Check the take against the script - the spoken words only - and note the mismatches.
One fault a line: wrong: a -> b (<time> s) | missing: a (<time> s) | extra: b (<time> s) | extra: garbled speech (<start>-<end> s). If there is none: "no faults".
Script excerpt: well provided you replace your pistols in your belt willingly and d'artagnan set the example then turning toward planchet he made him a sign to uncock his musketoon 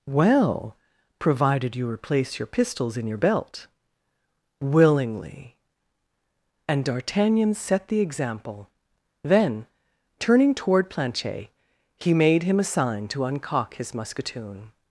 no faults